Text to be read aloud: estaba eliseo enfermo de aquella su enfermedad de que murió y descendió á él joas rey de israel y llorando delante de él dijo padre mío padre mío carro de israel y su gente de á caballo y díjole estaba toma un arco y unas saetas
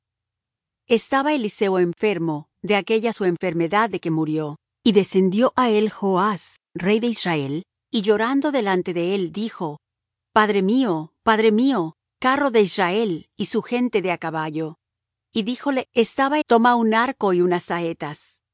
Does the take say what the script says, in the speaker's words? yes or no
yes